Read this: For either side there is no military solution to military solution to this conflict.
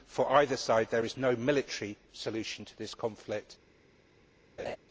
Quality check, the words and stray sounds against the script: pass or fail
fail